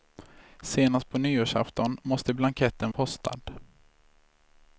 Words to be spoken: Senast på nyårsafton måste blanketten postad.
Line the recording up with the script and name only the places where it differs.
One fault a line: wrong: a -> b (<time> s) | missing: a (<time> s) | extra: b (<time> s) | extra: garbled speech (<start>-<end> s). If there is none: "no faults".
no faults